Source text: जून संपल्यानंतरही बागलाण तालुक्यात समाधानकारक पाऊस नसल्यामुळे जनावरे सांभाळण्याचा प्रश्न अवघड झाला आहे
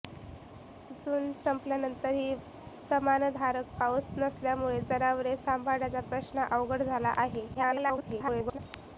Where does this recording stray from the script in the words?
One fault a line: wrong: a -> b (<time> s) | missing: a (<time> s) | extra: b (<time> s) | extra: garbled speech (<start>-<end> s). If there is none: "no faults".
missing: बागलाण तालुक्यात (2.3 s)
extra: garbled speech (7.5-8.6 s)